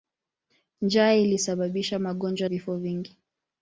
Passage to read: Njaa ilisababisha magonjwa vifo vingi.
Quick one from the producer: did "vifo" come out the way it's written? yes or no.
yes